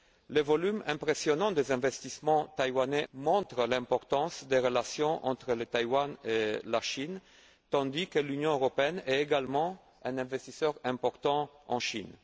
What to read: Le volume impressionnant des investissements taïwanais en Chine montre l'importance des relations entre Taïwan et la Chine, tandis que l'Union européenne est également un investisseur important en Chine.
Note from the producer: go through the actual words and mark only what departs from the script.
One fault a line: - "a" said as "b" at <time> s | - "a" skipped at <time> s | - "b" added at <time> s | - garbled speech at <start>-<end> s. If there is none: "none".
- "en Chine" skipped at 3.0 s